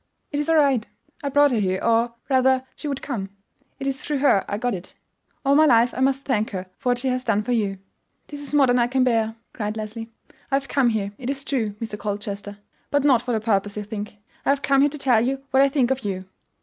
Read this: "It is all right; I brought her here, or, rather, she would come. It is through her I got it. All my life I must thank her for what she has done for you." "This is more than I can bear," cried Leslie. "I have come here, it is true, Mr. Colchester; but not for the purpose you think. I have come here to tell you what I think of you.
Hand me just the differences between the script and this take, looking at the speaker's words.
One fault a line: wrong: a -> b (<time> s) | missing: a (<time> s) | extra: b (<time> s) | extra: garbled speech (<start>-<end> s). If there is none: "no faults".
no faults